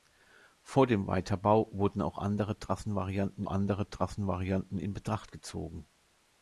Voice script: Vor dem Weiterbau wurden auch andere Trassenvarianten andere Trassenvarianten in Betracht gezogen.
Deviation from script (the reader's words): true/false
false